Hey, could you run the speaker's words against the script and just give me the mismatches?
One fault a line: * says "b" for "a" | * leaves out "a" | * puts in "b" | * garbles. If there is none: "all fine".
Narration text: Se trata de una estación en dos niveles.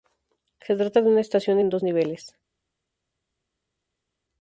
all fine